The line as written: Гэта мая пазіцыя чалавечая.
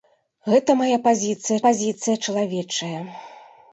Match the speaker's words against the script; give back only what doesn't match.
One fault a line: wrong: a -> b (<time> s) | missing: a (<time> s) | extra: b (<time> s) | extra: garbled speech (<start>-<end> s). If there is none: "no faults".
extra: пазіцыя (1.7 s)